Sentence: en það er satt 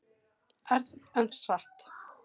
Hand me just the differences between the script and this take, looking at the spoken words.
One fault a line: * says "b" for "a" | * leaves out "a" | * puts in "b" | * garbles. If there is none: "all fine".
* leaves out "það"